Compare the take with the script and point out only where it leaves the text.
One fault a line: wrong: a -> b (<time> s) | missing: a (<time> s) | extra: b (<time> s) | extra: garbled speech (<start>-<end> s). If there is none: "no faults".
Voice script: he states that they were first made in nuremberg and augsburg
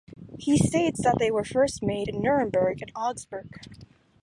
no faults